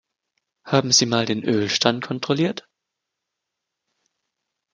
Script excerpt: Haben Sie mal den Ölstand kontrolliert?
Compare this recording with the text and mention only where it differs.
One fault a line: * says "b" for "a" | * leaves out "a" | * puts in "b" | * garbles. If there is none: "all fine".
all fine